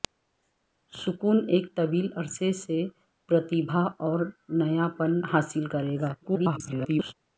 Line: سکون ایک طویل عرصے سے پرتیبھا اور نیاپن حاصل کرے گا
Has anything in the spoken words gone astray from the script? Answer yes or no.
yes